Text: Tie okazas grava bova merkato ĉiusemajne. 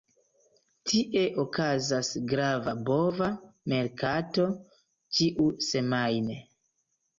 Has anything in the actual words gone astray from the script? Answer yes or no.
no